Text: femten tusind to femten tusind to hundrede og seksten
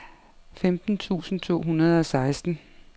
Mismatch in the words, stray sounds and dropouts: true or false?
true